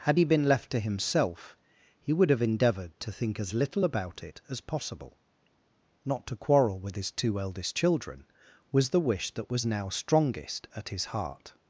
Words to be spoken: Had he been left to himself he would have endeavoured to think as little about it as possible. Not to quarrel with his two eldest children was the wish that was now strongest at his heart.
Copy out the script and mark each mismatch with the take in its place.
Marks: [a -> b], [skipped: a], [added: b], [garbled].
Had he been left to himself he would have endeavoured to think as little about it as possible. Not to quarrel with his two eldest children was the wish that was now strongest at his heart.